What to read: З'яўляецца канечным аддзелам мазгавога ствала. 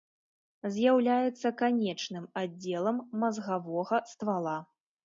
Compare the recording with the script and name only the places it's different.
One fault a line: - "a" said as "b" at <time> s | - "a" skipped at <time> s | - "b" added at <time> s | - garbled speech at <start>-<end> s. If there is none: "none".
none